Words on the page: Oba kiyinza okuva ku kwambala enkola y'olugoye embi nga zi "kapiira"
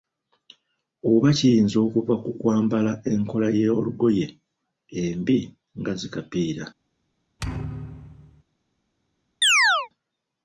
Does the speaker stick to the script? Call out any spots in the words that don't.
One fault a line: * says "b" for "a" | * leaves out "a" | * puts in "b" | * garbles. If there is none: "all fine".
all fine